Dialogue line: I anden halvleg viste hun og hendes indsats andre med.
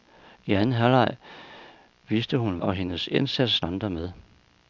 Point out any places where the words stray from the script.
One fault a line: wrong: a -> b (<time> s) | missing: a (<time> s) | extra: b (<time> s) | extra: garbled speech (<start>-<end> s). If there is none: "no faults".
no faults